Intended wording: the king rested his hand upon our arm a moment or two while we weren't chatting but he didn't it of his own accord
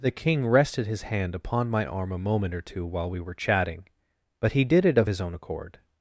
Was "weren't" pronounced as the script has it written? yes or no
no